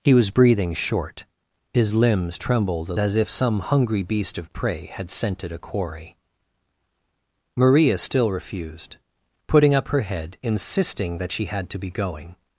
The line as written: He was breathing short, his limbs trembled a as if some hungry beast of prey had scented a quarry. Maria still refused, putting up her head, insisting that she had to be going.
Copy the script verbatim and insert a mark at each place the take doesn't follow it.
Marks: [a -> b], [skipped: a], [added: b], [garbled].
He was breathing short, his limbs trembled a as if some hungry beast of prey had scented a quarry. Maria still refused, putting up her head, insisting that she had to be going.